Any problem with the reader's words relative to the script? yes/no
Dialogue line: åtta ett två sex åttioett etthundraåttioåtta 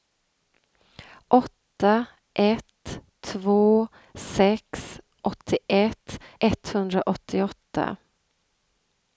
no